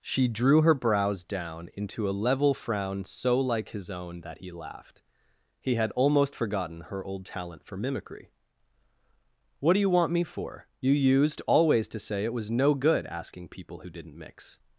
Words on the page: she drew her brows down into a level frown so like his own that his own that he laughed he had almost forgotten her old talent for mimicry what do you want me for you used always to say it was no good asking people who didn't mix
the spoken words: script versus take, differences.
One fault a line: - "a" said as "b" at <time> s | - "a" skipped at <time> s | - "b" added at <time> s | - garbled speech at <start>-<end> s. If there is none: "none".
- "his own that" skipped at 4.4 s